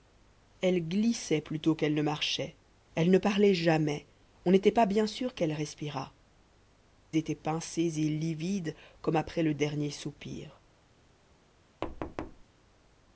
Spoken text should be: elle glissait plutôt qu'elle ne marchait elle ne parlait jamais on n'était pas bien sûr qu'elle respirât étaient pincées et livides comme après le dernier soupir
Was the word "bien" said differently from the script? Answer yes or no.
no